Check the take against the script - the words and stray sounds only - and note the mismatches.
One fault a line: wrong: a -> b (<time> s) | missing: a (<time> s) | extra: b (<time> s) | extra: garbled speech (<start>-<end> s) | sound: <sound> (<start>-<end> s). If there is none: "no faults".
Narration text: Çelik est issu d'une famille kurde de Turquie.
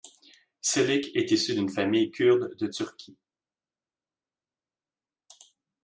no faults